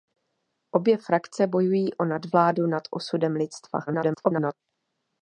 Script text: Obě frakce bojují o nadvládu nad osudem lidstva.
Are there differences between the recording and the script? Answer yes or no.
yes